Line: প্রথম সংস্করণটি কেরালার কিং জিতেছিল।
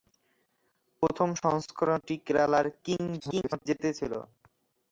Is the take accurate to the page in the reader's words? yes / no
no